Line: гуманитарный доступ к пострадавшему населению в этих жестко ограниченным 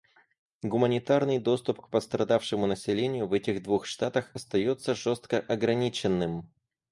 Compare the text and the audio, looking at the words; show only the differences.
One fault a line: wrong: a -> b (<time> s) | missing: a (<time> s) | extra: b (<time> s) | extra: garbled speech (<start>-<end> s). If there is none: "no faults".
extra: двух штатах остается (3.6 s)